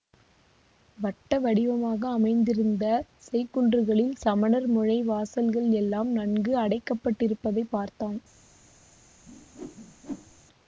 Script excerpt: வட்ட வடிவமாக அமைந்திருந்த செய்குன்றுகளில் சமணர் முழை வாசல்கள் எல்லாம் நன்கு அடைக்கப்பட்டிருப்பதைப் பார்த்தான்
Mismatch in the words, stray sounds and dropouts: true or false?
true